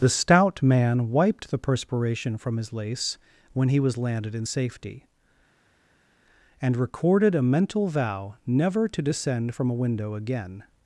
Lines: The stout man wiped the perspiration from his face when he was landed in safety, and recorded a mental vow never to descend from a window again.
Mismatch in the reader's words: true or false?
true